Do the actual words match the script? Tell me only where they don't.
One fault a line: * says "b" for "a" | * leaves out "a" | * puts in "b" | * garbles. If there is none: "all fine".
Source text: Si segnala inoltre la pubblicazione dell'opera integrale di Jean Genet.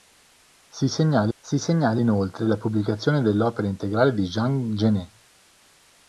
* puts in "si segnala"